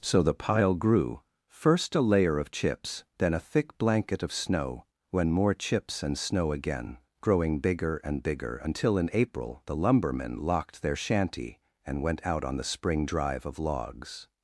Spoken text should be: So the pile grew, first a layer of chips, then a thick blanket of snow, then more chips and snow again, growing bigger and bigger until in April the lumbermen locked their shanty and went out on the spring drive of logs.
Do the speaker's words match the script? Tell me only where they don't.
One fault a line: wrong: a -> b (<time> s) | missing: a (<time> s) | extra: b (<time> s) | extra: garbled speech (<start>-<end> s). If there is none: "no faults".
wrong: then -> when (5.1 s)